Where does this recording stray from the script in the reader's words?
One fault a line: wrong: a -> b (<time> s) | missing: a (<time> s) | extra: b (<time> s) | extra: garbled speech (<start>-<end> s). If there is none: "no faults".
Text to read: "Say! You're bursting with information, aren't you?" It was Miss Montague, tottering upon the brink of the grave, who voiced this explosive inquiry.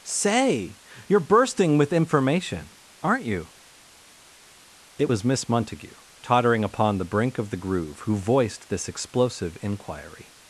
wrong: grave -> groove (7.6 s)